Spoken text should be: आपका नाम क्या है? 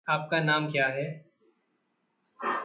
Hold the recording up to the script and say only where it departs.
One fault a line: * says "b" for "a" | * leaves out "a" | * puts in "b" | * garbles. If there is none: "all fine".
all fine